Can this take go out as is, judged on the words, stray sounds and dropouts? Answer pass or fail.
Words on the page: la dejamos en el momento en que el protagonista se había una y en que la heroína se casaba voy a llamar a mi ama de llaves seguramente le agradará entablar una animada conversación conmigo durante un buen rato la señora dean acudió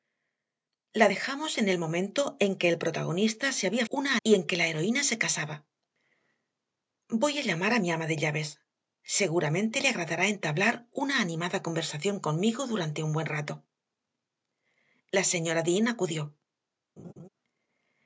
fail